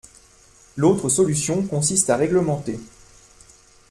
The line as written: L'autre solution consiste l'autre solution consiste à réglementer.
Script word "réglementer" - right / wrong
right